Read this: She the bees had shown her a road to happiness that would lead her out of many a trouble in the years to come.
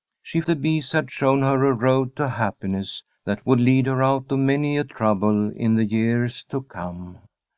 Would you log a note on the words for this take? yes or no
no